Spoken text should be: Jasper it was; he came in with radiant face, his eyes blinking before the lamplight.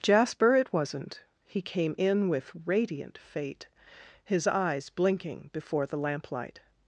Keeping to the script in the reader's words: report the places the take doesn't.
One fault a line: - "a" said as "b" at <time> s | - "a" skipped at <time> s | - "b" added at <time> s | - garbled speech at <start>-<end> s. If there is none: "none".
- "was" said as "wasn't" at 0.7 s
- "face" said as "fate" at 3.2 s